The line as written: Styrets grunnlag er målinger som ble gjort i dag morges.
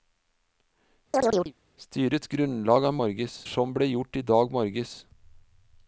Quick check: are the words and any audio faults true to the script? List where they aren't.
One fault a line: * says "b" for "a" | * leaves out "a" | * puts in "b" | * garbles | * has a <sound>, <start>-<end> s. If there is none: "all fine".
* has a chirp, 1.1-1.5 s
* says "morges" for "målinger"